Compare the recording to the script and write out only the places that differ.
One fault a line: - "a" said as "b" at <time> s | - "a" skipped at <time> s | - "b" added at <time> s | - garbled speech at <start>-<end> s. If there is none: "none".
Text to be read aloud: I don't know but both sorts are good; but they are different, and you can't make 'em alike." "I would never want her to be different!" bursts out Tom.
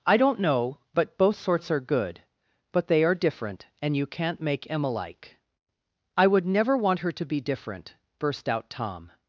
- "bursts" said as "burst" at 8.2 s